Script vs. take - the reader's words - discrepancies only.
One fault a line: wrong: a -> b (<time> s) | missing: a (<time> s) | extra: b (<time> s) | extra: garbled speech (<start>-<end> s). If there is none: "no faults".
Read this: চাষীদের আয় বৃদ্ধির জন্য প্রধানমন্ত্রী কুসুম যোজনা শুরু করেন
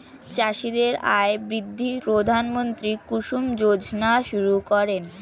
missing: জন্য (2.0 s)